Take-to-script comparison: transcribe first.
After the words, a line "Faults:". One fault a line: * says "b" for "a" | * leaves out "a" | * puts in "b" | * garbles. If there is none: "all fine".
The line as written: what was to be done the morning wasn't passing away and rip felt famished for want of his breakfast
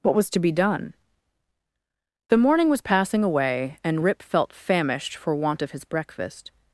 what was to be done the morning was passing away and rip felt famished for want of his breakfast
Faults:
* says "was" for "wasn't"